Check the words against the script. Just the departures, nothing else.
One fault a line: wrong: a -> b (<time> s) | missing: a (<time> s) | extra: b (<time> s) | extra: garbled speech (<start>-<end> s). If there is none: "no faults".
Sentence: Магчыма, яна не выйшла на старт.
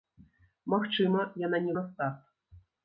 missing: выйшла (1.7 s)